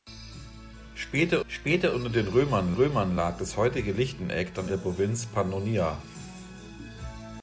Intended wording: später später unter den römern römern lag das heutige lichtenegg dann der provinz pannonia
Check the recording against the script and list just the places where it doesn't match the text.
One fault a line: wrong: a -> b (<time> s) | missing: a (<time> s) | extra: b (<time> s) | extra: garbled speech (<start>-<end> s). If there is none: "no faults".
no faults